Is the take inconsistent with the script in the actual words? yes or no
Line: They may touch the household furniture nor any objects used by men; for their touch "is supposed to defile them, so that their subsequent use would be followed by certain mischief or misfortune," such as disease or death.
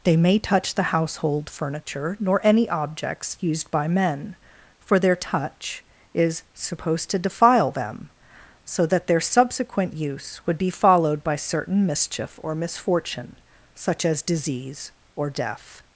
no